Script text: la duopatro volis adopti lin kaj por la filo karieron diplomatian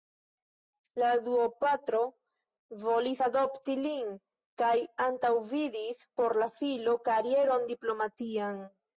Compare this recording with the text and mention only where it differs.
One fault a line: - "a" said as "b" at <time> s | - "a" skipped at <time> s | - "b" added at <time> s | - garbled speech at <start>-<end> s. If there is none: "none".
- "antaŭvidis" added at 5.1 s